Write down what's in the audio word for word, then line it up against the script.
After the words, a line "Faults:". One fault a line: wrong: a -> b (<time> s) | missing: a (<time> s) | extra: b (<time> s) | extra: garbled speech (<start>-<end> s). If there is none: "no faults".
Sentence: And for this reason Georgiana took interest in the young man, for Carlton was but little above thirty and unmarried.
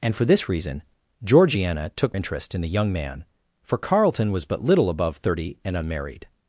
And for this reason Georgiana took interest in the young man, for Carlton was but little above thirty and unmarried.
Faults:
no faults